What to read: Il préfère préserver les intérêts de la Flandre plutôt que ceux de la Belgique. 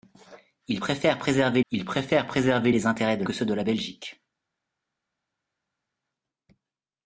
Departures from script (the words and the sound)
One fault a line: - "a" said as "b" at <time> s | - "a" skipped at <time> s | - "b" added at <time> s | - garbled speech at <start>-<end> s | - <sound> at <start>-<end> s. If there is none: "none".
- "il préfère préserver" added at 1.7 s
- "la Flandre plutôt" skipped at 3.2 s